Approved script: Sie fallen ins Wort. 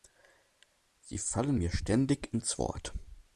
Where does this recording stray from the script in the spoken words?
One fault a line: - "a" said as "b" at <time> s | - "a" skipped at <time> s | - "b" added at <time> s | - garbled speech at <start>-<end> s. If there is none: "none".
- "mir ständig" added at 1.5 s